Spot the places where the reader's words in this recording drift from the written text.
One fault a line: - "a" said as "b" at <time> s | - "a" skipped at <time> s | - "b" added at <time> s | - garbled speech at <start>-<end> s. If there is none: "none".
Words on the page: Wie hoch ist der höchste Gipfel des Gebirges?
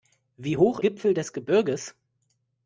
- "ist der höchste" skipped at 0.8 s